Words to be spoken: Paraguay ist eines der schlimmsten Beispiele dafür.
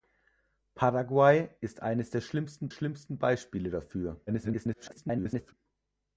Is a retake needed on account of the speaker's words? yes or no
yes